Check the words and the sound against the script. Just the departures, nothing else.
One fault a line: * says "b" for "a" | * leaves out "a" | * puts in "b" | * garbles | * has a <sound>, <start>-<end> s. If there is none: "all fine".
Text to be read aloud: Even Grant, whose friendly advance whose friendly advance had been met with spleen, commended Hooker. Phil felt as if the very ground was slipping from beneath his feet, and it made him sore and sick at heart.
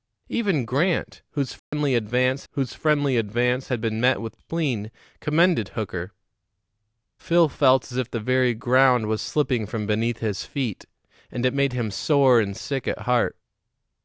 * has a dropout, 1.6-1.7 s